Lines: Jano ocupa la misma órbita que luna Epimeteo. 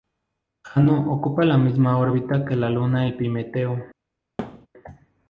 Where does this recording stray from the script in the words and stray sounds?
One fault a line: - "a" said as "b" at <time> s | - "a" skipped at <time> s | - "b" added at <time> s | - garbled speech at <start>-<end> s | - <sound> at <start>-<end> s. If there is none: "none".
- "la" added at 2.5 s
- thud at 4.4-4.7 s